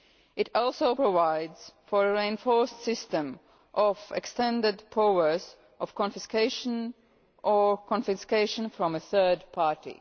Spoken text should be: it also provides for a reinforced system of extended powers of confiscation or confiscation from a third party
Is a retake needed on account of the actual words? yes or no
no